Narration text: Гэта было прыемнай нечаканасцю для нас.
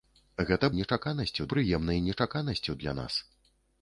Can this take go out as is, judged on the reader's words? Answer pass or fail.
fail